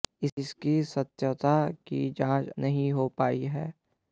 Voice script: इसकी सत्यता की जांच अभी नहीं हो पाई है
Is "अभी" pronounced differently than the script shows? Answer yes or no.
yes